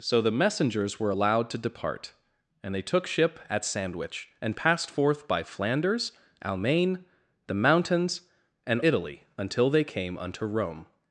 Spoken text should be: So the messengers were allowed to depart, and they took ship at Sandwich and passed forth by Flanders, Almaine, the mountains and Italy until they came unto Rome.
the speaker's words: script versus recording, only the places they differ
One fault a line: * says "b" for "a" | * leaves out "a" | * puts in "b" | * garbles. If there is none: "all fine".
all fine